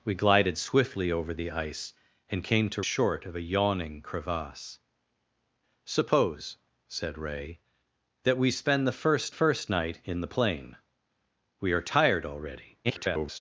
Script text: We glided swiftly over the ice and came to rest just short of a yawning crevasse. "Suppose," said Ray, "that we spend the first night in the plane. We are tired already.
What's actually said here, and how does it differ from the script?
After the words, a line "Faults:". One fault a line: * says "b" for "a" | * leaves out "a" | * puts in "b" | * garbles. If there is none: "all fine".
We glided swiftly over the ice and came to short of a yawning crevasse. "Suppose," said Ray, "that we spend the first first night in the plane. We are tired already. [garbled]
Faults:
* leaves out "rest just"
* puts in "first"
* garbles